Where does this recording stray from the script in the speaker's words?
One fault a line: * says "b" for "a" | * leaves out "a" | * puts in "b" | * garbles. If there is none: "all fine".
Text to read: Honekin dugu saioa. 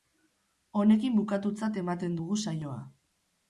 * puts in "bukatutzat ematen"